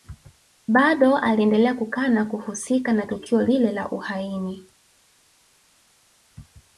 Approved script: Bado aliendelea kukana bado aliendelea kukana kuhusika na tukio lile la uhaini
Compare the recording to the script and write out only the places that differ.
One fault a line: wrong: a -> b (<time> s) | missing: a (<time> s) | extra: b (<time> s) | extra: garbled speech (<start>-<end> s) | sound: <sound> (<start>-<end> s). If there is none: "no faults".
missing: bado aliendelea kukana (2.2 s)